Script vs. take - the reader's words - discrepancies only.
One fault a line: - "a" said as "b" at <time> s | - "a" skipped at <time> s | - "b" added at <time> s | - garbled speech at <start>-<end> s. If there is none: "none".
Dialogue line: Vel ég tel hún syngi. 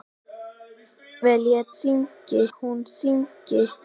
- "tel" said as "syngi" at 1.8 s